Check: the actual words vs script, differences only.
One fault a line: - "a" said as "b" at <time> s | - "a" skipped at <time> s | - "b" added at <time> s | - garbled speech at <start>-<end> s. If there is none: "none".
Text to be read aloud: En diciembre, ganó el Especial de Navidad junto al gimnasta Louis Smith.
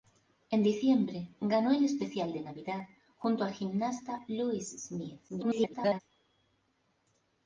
- garbled speech at 5.3-6.0 s